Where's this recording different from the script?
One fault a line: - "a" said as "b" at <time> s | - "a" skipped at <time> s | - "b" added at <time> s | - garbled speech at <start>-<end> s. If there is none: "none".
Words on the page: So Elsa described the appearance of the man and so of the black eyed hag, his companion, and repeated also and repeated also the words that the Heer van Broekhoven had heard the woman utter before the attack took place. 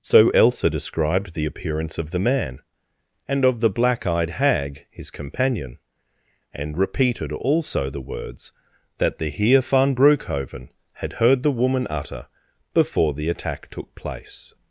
- "so" skipped at 3.5 s
- "and repeated also" skipped at 7.9 s